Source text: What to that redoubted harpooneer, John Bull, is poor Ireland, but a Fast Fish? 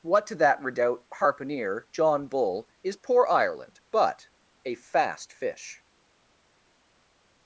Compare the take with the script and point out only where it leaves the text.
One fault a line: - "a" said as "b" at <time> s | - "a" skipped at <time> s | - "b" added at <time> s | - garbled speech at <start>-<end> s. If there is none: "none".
- "redoubted" said as "redoubt" at 0.6 s